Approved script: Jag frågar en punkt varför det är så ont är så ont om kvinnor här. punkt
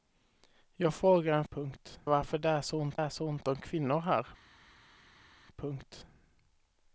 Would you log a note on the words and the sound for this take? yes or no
no